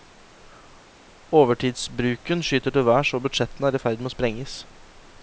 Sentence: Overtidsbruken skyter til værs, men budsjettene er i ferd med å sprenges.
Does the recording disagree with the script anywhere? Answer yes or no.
yes